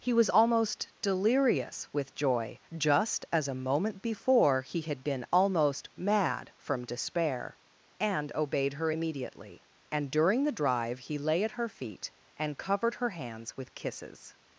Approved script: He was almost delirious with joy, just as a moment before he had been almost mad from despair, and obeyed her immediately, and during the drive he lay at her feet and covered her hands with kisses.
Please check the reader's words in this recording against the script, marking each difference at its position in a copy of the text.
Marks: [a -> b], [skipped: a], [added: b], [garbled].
He was almost delirious with joy, just as a moment before he had been almost mad from despair, and obeyed her immediately, and during the drive he lay at her feet and covered her hands with kisses.